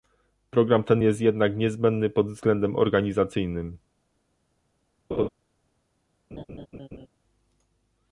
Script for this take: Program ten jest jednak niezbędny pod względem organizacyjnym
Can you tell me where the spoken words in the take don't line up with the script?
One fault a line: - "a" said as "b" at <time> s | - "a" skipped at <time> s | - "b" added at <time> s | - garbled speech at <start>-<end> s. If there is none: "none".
none